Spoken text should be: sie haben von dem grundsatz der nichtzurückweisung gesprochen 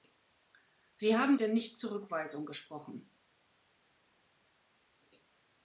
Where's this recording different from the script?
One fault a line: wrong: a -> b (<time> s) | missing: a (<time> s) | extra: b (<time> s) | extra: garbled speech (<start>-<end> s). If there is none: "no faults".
missing: von dem grundsatz (1.4 s)